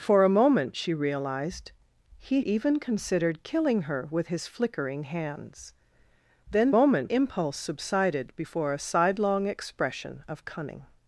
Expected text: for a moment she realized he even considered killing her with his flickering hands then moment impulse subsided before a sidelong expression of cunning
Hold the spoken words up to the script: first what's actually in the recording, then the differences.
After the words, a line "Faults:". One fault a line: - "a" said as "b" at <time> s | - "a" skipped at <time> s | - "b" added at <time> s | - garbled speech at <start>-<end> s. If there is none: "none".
for a moment she realized he even considered killing her with his flickering hands then moment impulse subsided before a sidelong expression of cunning
Faults:
none